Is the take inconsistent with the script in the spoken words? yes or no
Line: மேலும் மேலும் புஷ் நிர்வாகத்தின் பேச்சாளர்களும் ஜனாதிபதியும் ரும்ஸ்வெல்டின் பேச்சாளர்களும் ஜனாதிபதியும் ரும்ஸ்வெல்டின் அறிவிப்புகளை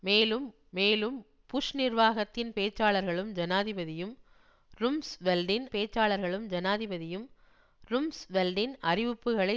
no